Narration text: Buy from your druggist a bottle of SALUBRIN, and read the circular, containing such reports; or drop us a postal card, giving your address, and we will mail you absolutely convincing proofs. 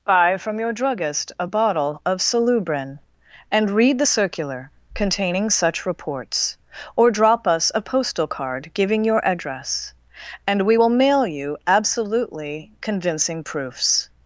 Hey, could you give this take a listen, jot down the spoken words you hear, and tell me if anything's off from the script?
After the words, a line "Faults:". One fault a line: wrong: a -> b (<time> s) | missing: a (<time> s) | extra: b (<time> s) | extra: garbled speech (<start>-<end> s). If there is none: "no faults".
Buy from your druggist a bottle of SALUBRIN, and read the circular, containing such reports; or drop us a postal card, giving your address, and we will mail you absolutely convincing proofs.
Faults:
no faults